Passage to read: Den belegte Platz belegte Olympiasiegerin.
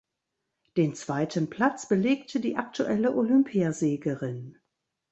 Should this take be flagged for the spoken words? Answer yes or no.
yes